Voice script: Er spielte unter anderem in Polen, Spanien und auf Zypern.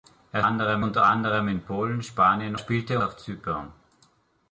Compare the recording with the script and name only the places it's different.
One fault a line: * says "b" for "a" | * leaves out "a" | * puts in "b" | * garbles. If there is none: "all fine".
* says "anderem" for "spielte"
* says "spielte" for "und"